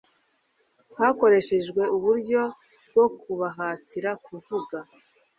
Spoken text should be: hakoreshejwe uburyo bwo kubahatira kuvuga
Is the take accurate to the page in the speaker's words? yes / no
yes